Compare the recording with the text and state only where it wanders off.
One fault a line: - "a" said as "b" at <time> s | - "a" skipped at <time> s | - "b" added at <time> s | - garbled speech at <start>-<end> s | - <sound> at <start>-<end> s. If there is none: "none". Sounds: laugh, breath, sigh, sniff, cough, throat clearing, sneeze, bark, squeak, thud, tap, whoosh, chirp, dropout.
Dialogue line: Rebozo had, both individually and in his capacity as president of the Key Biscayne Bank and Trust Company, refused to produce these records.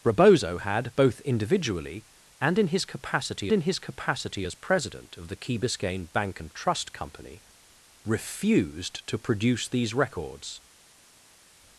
- "in his capacity" added at 3.5 s